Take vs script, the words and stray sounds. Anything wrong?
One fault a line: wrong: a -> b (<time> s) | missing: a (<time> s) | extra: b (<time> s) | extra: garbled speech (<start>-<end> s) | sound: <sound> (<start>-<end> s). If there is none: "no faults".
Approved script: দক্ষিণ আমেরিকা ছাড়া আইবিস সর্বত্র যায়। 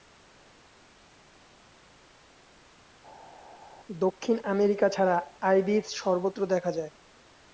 extra: দেখা (6.5 s)